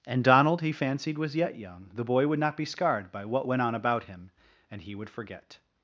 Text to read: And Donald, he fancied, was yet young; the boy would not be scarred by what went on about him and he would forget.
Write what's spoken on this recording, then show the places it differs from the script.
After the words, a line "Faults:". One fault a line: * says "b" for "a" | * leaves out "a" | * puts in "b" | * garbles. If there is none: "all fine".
And Donald, he fancied, was yet young; the boy would not be scarred by what went on about him and he would forget.
Faults:
all fine